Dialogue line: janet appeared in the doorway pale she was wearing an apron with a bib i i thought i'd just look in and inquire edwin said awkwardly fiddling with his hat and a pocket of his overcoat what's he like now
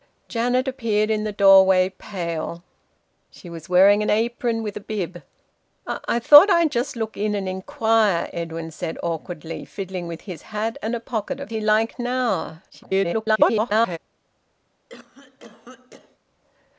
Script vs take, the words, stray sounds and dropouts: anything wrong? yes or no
yes